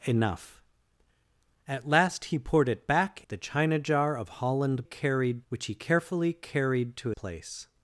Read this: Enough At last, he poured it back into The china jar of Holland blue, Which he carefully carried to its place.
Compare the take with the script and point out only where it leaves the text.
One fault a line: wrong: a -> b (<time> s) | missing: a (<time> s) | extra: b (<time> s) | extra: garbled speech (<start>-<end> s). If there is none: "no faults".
missing: into (3.3 s)
wrong: blue -> carried (4.8 s)
missing: its (7.1 s)